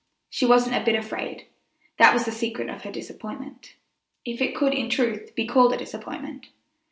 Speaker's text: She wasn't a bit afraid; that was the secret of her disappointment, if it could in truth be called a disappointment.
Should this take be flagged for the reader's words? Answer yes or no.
no